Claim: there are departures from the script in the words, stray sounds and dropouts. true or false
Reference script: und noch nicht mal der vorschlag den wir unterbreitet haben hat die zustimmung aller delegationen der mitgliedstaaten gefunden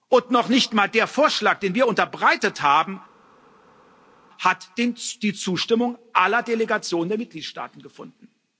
false